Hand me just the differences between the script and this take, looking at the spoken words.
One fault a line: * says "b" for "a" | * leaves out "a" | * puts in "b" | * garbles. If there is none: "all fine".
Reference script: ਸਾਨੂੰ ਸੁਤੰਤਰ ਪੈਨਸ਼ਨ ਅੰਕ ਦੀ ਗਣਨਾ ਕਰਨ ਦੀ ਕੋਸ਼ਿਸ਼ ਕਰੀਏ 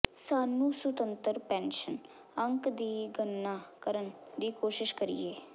all fine